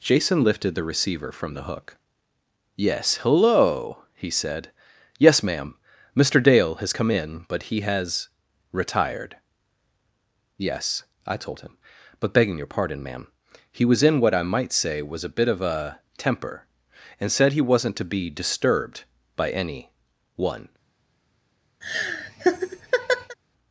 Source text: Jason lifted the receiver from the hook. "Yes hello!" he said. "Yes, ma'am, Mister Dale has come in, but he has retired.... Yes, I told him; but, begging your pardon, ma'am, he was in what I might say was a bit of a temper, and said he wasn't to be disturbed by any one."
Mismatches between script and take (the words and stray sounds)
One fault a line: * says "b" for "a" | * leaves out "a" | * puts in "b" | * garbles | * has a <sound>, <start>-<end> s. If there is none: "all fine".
* has a laugh, 21.8-23.4 s